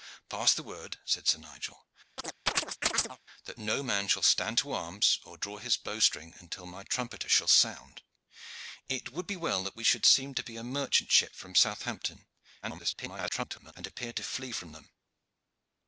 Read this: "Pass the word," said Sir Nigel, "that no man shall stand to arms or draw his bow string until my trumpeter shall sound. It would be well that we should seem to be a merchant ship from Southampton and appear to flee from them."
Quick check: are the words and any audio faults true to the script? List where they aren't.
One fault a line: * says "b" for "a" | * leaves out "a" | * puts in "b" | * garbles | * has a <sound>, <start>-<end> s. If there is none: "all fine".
* has a chirp, 2.2-3.2 s
* garbles